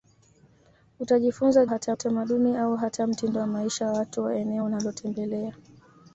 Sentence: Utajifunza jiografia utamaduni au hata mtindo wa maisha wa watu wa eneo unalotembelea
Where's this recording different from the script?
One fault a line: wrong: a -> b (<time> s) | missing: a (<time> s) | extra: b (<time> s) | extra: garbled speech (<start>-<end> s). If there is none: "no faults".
wrong: jiografia -> hata (1.7 s)